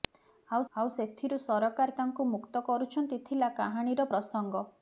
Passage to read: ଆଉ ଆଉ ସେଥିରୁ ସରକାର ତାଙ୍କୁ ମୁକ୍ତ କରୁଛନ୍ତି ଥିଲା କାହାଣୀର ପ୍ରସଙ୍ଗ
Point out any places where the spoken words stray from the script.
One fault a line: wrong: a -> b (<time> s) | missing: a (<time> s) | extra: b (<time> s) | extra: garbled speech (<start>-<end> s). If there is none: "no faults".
no faults